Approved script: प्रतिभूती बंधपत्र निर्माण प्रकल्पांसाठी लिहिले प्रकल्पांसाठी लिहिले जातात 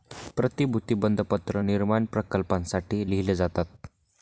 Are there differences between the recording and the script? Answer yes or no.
yes